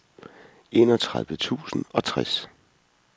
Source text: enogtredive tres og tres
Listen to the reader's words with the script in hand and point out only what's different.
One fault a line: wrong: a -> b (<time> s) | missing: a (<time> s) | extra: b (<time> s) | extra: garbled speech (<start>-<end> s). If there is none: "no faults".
wrong: tres -> tusind (1.4 s)